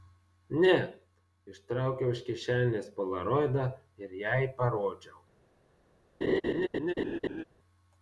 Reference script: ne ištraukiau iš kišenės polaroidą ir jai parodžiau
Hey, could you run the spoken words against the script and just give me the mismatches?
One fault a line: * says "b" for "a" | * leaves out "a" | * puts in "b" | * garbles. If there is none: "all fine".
all fine